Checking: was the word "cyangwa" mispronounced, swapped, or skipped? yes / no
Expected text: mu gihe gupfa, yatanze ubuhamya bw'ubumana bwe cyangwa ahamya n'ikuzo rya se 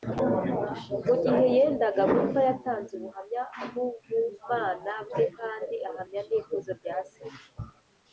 yes